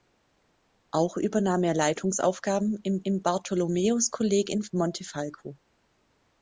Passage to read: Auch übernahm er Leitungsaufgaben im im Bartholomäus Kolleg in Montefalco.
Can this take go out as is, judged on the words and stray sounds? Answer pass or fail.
pass